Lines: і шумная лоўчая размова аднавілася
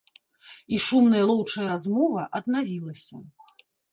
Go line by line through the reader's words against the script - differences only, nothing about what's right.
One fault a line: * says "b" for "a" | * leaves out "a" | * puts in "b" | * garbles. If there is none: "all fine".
all fine